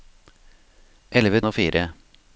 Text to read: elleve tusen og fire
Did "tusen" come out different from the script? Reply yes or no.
yes